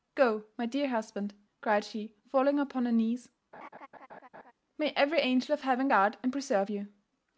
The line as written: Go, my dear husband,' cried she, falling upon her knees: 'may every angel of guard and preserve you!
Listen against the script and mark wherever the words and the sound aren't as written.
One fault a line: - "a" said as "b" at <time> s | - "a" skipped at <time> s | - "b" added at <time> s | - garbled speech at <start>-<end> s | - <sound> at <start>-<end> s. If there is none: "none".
- laugh at 3.5-4.5 s
- "heaven" added at 5.6 s